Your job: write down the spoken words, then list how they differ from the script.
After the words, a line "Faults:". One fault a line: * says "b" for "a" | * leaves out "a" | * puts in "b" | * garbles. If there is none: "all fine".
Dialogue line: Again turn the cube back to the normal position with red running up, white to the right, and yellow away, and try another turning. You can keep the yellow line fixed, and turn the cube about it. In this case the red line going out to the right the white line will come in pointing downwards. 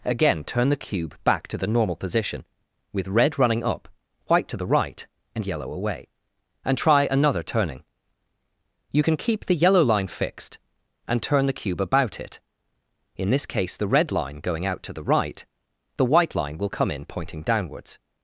Again turn the cube back to the normal position with red running up, white to the right, and yellow away, and try another turning. You can keep the yellow line fixed, and turn the cube about it. In this case the red line going out to the right the white line will come in pointing downwards.
Faults:
all fine